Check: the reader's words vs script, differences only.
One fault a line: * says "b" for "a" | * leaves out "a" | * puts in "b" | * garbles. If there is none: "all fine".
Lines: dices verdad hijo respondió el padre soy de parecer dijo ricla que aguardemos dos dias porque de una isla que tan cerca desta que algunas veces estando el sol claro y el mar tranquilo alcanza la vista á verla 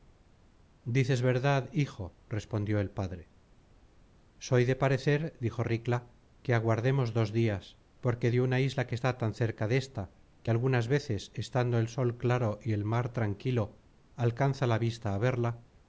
* puts in "está"